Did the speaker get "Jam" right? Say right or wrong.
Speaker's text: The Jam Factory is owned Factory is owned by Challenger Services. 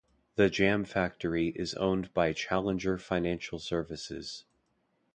right